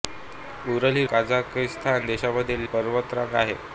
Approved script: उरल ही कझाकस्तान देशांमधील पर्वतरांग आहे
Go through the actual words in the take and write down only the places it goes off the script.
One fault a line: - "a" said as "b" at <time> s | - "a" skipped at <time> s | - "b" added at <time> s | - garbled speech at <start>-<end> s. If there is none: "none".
none